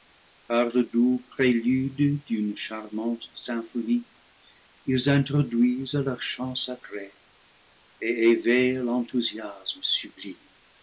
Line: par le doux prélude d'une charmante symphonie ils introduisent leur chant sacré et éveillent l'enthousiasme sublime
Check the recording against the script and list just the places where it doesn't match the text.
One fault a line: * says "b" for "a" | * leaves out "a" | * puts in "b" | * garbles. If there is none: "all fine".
all fine